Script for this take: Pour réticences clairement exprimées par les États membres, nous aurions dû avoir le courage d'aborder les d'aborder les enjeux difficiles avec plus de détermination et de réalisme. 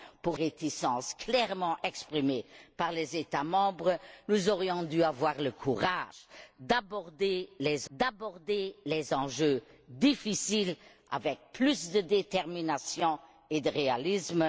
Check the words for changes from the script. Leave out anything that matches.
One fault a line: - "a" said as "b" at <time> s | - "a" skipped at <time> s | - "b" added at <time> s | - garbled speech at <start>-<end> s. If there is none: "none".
none